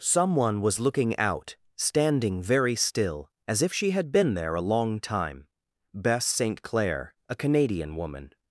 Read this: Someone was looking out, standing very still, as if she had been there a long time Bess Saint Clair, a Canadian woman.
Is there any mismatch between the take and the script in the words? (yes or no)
no